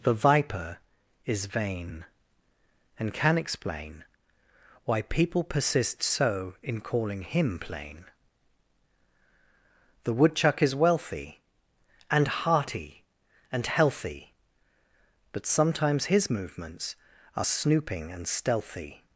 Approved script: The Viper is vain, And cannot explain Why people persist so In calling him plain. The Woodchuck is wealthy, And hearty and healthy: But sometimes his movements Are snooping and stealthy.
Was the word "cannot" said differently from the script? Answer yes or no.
yes